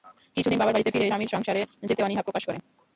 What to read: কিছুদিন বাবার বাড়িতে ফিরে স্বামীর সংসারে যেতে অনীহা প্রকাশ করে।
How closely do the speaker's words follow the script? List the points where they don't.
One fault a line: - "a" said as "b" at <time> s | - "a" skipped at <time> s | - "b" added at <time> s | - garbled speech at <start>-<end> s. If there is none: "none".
none